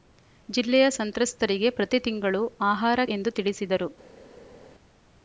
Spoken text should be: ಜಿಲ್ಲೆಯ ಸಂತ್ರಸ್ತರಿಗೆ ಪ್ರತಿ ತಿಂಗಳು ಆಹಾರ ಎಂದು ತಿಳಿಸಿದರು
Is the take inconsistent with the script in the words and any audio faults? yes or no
no